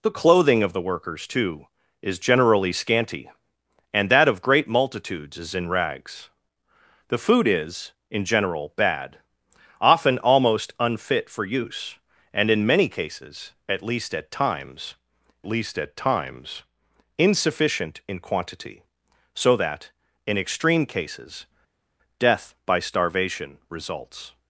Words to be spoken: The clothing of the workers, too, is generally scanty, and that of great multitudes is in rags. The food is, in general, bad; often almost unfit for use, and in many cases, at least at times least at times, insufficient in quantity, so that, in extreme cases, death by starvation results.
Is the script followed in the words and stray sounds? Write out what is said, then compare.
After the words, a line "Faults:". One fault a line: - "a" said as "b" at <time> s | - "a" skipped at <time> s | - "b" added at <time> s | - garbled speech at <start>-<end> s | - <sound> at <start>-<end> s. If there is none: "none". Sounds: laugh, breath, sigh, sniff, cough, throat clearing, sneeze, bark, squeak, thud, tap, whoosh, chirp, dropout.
The clothing of the workers, too, is generally scanty, and that of great multitudes is in rags. The food is, in general, bad; often almost unfit for use, and in many cases, at least at times least at times, insufficient in quantity, so that, in extreme cases, death by starvation results.
Faults:
none